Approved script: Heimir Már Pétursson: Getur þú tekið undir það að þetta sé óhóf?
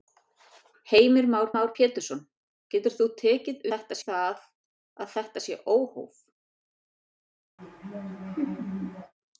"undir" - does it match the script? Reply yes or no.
no